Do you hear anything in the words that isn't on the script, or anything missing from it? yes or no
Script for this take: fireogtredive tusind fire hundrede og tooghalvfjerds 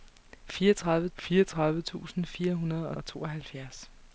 yes